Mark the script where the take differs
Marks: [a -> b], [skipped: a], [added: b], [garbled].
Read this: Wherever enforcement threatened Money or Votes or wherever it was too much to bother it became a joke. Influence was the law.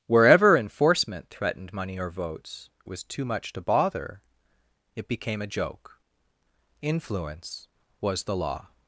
Wherever enforcement threatened Money or Votes [skipped: or wherever it] was too much to bother it became a joke. Influence was the law.